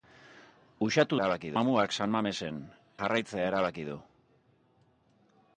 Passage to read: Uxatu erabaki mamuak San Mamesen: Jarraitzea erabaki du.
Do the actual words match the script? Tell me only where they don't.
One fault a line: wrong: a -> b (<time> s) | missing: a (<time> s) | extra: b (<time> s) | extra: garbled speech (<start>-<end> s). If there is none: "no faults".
no faults